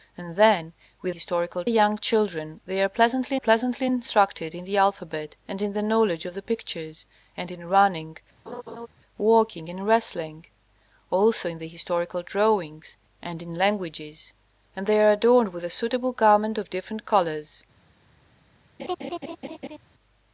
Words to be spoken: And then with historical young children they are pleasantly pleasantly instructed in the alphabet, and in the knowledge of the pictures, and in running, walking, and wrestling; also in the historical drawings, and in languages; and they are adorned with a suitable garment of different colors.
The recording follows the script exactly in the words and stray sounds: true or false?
false